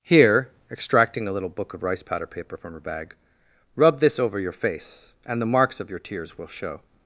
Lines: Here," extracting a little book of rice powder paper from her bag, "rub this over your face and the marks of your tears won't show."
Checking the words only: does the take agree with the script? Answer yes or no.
no